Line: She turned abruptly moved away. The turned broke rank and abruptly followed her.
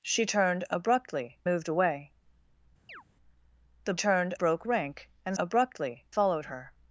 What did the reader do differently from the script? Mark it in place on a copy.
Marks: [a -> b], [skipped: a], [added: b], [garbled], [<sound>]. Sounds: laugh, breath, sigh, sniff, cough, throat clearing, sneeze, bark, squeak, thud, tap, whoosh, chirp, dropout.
She turned abruptly moved away. [chirp] The turned broke rank and abruptly followed her.